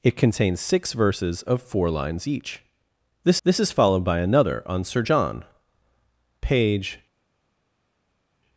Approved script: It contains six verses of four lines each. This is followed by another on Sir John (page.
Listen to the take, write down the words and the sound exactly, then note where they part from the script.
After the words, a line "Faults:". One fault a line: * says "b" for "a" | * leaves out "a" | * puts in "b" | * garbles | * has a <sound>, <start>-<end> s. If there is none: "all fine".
It contains six verses of four lines each. This this is followed by another on Sir John (page.
Faults:
* puts in "this"